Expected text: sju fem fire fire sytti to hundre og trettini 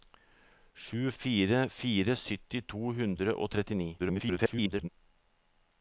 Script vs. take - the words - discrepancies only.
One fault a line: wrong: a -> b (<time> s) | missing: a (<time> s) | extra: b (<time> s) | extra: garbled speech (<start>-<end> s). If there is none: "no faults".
missing: fem (1.0 s)
extra: garbled speech (4.0-4.9 s)